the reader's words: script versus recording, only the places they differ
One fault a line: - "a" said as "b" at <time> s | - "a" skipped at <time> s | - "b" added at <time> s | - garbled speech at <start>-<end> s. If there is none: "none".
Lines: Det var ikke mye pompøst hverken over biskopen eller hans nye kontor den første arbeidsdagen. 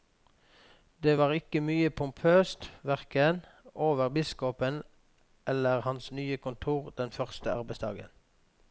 none